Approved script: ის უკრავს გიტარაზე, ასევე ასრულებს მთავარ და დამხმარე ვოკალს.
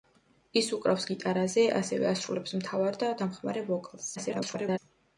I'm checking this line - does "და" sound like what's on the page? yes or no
yes